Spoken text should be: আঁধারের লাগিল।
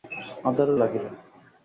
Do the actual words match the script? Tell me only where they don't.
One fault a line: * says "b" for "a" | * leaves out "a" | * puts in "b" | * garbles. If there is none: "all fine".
all fine